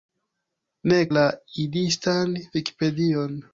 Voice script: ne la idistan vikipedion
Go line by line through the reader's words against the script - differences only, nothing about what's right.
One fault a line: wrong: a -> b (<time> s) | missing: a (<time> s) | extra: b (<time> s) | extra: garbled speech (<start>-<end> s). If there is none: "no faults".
no faults